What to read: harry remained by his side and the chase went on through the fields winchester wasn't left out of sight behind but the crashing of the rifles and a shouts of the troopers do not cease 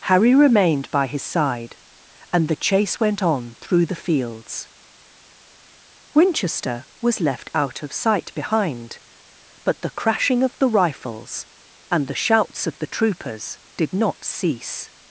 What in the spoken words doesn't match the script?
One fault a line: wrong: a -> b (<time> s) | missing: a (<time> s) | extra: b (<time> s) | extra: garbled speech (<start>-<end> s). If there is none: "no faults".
wrong: wasn't -> was (7.0 s)
wrong: a -> the (12.1 s)
wrong: do -> did (13.8 s)